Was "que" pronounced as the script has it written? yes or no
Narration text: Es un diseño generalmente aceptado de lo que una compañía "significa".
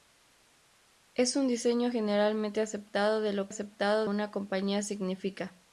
no